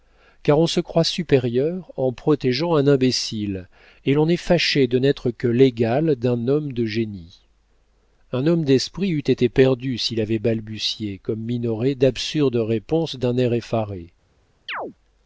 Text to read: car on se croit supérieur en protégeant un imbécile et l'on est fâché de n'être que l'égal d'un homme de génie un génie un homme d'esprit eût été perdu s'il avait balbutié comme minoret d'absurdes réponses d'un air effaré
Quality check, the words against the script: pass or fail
fail